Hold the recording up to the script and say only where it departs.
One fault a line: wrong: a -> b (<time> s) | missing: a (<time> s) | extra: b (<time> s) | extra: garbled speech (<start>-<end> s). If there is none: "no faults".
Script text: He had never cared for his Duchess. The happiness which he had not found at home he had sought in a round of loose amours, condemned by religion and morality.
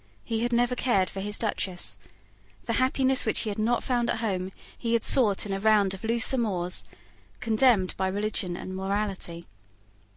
no faults